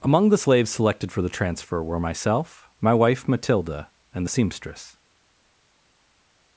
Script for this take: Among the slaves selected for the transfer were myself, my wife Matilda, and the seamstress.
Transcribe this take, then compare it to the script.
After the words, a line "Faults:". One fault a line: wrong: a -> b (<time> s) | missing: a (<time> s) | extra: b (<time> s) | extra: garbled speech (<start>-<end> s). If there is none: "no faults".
Among the slaves selected for the transfer were myself, my wife Matilda, and the seamstress.
Faults:
no faults